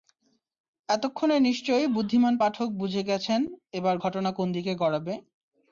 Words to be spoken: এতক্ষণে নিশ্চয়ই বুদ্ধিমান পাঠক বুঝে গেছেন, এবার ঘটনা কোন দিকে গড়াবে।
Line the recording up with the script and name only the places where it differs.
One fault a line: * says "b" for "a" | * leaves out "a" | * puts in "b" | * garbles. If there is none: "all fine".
all fine